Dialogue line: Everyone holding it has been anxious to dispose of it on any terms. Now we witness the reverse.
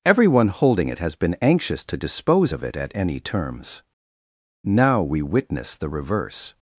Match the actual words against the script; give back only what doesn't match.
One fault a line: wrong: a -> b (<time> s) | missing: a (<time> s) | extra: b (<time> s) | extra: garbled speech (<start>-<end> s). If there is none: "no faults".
wrong: on -> at (2.8 s)